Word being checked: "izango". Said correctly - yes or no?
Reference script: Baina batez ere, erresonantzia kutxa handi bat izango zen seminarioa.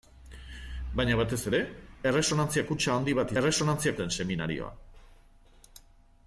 no